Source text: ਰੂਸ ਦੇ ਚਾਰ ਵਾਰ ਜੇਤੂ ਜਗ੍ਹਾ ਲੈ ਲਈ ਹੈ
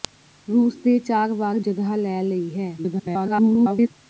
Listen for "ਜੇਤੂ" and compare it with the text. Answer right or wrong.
wrong